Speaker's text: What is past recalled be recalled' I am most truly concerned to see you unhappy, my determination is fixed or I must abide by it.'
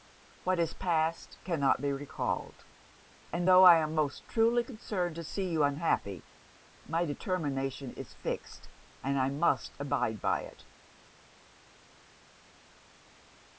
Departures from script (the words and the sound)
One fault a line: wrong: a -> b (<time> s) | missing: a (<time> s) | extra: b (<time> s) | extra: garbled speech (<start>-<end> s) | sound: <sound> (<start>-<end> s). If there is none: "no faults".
wrong: recalled -> cannot (1.4 s)
extra: and tho (3.3 s)
wrong: or -> and (9.0 s)